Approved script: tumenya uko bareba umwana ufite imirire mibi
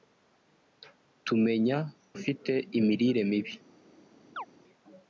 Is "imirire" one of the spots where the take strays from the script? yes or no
no